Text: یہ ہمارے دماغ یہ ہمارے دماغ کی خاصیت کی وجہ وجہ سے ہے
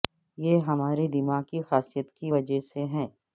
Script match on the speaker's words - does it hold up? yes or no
no